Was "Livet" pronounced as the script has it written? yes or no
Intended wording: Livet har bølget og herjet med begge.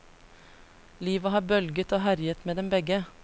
yes